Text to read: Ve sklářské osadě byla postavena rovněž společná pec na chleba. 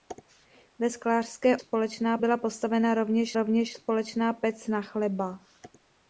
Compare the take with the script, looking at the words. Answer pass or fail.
fail